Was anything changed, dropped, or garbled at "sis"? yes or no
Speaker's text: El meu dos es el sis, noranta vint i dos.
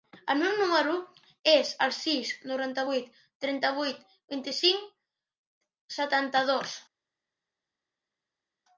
no